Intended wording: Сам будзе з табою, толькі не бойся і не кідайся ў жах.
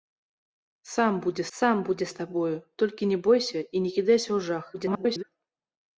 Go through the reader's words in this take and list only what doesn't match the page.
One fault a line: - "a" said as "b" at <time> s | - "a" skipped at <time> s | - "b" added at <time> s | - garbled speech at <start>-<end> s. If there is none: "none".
- "сам будзе" added at 1.6 s
- garbled speech at 4.7-5.2 s